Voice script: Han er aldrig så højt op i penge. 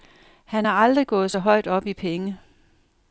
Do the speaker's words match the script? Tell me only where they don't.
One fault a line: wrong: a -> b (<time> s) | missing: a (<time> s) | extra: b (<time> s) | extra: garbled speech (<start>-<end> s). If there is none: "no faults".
extra: gået (1.1 s)